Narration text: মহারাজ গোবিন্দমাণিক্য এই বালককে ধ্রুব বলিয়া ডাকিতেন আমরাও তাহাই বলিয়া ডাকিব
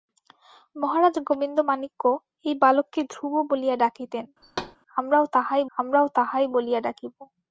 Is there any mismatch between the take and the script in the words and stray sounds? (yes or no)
yes